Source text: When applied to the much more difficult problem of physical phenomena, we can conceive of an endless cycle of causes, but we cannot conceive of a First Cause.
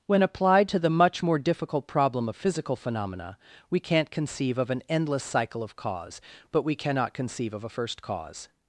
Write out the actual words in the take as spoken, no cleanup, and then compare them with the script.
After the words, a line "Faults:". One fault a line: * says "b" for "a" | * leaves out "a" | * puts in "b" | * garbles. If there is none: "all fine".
When applied to the much more difficult problem of physical phenomena, we can't conceive of an endless cycle of cause, but we cannot conceive of a First Cause.
Faults:
* says "can't" for "can"
* says "cause" for "causes"